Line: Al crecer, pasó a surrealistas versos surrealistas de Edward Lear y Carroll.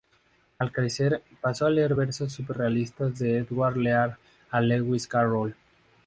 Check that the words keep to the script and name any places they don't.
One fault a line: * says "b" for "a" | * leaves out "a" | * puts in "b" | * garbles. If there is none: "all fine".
* says "leer" for "surrealistas"
* puts in "Lewis"